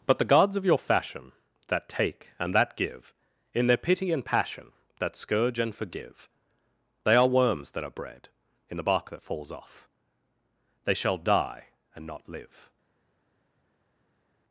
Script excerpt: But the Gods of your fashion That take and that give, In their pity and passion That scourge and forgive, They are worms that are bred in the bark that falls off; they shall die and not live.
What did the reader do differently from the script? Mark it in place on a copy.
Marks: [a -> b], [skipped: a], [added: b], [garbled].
But the Gods of your fashion That take and that give, In their pity and passion That scourge and forgive, They are worms that are bred in the bark that falls off; they shall die and not live.